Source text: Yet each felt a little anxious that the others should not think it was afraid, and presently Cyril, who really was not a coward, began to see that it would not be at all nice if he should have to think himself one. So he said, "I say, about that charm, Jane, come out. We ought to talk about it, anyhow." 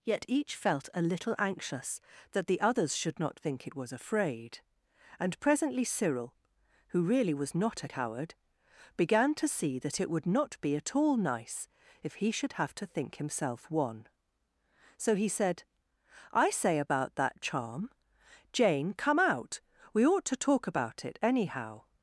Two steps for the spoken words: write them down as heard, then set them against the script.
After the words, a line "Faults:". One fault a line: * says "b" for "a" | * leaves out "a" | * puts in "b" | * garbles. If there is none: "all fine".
Yet each felt a little anxious that the others should not think it was afraid, and presently Cyril, who really was not a coward, began to see that it would not be at all nice if he should have to think himself one. So he said, "I say, about that charm, Jane, come out. We ought to talk about it, anyhow."
Faults:
all fine